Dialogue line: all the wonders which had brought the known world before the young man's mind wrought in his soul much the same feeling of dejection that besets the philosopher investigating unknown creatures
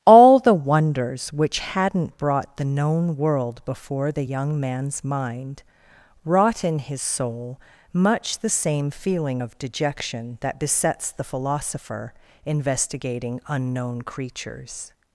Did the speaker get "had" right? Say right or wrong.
wrong